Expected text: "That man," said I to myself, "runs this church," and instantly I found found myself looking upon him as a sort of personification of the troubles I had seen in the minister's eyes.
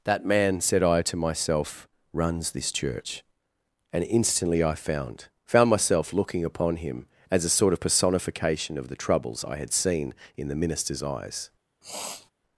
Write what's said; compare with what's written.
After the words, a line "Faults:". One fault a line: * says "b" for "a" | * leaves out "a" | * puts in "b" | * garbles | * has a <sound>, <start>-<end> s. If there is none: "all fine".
"That man," said I to myself, "runs this church," and instantly I found found myself looking upon him as a sort of personification of the troubles I had seen in the minister's eyes.
Faults:
* has a sniff, 11.8-12.3 s